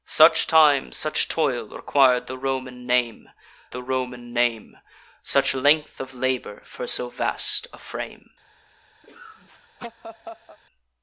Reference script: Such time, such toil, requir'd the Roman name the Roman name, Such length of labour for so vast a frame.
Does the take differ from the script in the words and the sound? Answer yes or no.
yes